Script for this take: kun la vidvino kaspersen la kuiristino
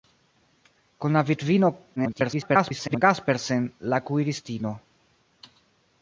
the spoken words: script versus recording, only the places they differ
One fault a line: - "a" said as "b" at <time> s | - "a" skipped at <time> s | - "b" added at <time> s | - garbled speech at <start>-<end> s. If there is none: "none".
- garbled speech at 2.0-3.0 s